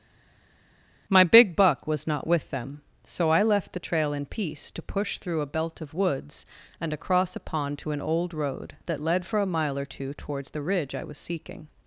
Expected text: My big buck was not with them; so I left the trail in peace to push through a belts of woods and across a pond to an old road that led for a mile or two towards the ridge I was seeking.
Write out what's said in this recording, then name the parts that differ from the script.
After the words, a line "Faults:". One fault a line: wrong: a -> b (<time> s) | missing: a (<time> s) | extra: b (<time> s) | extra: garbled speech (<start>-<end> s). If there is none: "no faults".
My big buck was not with them; so I left the trail in peace to push through a belt of woods and across a pond to an old road that led for a mile or two towards the ridge I was seeking.
Faults:
wrong: belts -> belt (5.5 s)